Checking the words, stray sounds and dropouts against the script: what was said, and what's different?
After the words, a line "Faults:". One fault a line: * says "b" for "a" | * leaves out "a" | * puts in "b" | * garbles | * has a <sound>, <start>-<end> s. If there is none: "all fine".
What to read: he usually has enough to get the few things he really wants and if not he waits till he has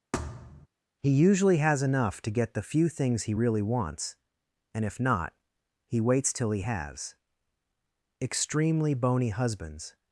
he usually has enough to get the few things he really wants and if not he waits till he has extremely bony husbands
Faults:
* has a thud, 0.1-0.7 s
* puts in "extremely bony husbands"